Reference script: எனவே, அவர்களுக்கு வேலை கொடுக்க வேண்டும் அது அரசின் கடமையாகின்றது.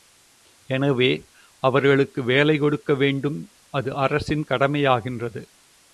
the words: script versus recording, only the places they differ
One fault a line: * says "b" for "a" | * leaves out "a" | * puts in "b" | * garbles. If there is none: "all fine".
all fine